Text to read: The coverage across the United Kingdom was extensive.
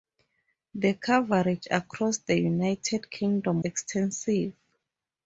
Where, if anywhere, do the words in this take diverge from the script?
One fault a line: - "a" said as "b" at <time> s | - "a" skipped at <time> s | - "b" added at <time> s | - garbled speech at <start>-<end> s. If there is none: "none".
- "was" skipped at 3.6 s